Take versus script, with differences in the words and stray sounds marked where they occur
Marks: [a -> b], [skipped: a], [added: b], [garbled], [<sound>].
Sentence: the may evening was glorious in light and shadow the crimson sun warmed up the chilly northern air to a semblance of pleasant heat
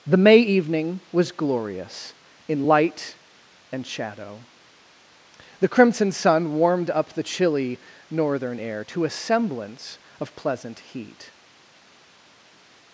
the may evening was glorious in light and shadow the crimson sun warmed up the chilly northern air to a semblance of pleasant heat